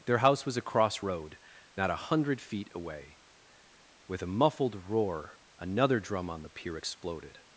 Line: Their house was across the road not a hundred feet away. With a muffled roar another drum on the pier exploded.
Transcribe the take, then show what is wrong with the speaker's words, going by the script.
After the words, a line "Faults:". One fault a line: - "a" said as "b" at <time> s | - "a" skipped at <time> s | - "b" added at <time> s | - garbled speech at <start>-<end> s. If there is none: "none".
Their house was across road not a hundred feet away. With a muffled roar another drum on the pier exploded.
Faults:
- "the" skipped at 1.0 s